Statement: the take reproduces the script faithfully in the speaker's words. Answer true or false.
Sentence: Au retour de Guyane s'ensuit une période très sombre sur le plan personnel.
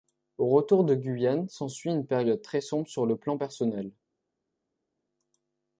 true